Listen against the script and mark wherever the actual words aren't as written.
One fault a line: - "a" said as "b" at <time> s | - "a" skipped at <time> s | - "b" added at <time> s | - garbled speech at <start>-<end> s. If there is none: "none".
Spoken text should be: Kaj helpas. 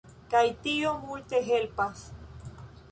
- "tio multe" added at 0.6 s